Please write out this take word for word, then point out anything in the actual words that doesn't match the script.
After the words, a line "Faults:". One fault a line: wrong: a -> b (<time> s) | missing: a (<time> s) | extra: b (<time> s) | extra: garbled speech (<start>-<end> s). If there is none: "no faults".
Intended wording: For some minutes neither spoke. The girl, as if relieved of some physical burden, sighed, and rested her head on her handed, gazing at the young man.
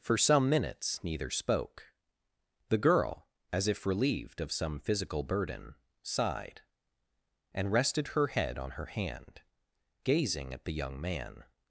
For some minutes neither spoke. The girl, as if relieved of some physical burden, sighed, and rested her head on her hand, gazing at the young man.
Faults:
wrong: handed -> hand (8.9 s)